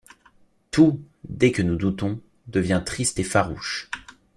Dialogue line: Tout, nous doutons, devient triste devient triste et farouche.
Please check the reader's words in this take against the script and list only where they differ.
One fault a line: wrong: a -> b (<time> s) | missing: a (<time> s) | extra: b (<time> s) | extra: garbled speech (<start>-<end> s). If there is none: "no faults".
extra: dès que (1.3 s)
missing: devient triste (3.2 s)